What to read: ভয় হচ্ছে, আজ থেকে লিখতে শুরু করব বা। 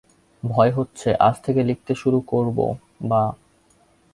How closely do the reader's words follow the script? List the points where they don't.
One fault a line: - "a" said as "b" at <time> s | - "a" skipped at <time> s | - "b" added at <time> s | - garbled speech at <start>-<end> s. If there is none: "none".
none